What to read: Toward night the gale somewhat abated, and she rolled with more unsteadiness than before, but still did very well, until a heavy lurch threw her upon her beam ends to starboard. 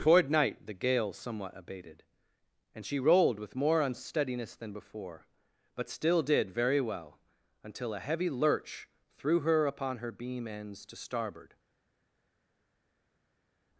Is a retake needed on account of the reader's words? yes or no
no